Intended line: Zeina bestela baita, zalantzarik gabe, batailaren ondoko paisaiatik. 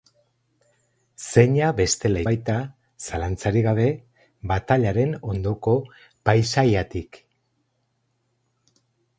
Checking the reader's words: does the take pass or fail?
pass